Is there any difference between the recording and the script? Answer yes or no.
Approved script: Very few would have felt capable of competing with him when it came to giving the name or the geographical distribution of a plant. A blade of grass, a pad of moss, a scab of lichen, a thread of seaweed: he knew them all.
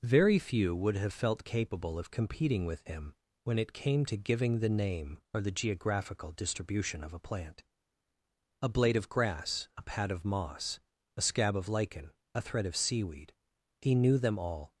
no